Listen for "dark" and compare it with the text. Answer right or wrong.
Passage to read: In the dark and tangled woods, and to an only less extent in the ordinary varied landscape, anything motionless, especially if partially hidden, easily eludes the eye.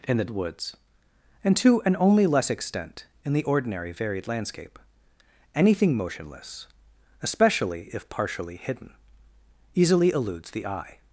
wrong